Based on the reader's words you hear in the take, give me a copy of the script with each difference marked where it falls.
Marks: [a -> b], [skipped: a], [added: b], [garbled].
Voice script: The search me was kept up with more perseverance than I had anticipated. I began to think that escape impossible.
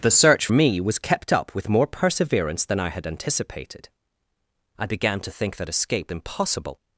The search me was kept up with more perseverance than I had anticipated. I began to think that escape impossible.